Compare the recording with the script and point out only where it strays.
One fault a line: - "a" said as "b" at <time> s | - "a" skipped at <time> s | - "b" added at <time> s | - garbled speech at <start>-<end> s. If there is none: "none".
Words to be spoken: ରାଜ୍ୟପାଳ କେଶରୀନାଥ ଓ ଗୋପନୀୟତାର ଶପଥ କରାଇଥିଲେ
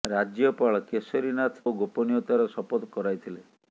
none